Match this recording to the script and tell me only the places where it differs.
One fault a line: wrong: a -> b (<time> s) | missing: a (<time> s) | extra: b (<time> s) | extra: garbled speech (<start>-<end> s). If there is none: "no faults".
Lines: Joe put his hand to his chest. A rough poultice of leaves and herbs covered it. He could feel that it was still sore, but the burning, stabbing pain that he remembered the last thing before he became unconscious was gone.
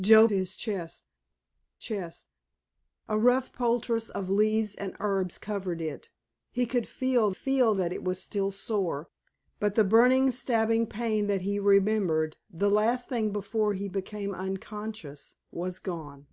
missing: put his hand (0.3 s)
extra: chest (1.8 s)
extra: feel (7.3 s)